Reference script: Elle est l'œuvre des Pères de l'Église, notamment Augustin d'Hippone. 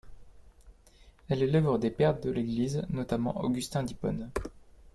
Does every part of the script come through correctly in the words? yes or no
yes